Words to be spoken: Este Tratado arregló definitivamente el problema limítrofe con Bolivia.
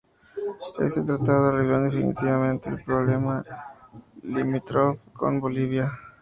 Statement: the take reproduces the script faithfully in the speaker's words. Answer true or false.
true